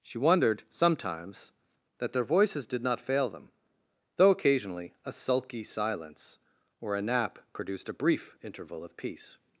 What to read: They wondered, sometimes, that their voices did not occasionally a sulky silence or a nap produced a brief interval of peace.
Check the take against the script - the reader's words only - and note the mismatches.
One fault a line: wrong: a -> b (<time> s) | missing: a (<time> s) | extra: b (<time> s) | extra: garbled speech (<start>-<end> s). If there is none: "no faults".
wrong: They -> She (0.0 s)
extra: fail them though (3.0 s)